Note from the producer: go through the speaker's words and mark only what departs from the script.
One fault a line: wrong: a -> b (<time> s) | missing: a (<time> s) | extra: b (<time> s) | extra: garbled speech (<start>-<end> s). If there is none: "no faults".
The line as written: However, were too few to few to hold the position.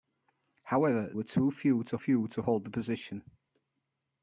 no faults